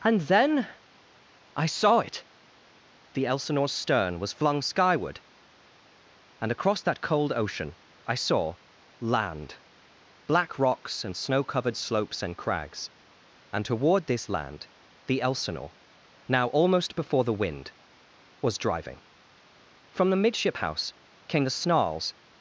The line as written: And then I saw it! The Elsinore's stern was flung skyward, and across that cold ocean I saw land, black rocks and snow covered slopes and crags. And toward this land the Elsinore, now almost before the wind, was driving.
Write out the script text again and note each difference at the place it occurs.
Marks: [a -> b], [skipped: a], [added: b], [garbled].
And then I saw it! The Elsinore's stern was flung skyward, and across that cold ocean I saw land, black rocks and snow covered slopes and crags. And toward this land the Elsinore, now almost before the wind, was driving. [added: From the midship house came the snarls]